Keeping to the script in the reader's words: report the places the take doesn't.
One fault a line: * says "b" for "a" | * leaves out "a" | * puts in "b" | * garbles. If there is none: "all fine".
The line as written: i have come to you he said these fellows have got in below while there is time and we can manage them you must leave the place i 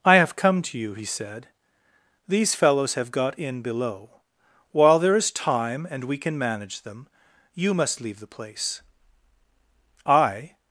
all fine